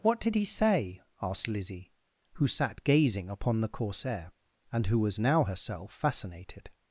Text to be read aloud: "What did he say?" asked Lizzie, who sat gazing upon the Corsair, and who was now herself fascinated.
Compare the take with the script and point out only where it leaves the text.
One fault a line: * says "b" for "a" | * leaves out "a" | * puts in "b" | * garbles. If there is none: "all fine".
all fine